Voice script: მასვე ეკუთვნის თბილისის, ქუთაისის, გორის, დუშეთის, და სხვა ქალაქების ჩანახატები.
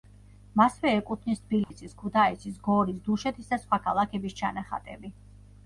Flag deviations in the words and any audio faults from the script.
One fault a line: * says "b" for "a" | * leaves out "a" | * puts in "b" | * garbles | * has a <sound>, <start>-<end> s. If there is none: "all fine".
* has a dropout, 1.6-1.7 s